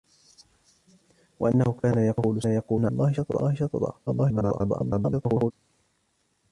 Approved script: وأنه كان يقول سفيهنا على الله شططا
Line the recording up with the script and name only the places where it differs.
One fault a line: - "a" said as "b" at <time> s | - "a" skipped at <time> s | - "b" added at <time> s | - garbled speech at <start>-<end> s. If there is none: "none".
- "على" skipped at 2.9 s
- garbled speech at 4.1-5.5 s